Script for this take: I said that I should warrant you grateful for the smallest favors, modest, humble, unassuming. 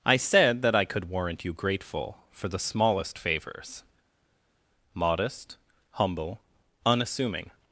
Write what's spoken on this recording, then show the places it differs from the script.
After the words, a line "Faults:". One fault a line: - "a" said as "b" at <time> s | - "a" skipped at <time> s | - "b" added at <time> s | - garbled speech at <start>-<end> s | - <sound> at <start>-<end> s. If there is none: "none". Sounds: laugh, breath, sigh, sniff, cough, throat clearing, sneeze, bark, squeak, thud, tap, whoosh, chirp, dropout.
I said that I could warrant you grateful for the smallest favors, modest, humble, unassuming.
Faults:
- "should" said as "could" at 0.8 s